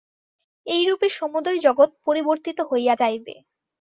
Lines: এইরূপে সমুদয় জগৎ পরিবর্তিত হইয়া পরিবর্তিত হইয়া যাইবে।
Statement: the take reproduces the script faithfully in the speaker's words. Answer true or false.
false